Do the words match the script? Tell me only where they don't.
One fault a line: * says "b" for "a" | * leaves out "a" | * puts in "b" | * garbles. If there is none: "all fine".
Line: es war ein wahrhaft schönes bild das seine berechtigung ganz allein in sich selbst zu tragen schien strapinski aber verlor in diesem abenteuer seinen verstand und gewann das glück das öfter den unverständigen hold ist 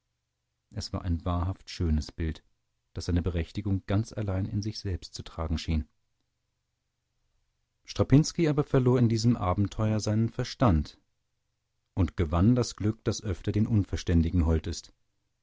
all fine